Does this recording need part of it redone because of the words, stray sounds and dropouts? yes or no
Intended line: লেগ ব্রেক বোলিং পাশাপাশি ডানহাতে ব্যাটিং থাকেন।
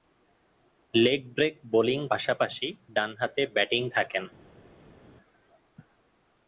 no